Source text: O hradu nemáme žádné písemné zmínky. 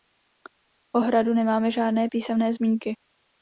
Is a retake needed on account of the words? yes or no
no